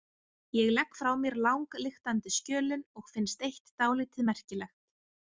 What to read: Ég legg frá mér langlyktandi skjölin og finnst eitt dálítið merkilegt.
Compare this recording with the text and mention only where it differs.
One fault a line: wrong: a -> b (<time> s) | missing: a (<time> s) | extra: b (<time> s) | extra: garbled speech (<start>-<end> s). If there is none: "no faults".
no faults